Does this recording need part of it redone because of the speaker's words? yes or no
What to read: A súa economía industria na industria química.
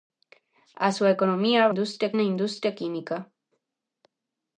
no